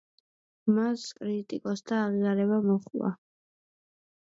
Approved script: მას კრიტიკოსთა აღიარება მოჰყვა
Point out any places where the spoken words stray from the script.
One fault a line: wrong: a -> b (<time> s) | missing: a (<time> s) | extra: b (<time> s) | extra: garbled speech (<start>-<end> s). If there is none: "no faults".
no faults